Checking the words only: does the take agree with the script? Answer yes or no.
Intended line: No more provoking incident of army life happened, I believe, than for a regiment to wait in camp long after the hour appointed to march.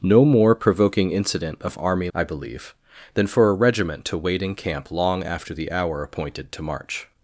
no